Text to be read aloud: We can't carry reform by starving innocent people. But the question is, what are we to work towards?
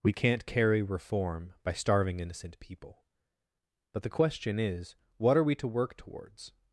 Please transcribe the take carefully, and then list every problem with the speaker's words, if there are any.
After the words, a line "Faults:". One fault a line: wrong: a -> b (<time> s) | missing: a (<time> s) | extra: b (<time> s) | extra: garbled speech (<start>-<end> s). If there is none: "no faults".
We can't carry reform by starving innocent people. But the question is, what are we to work towards?
Faults:
no faults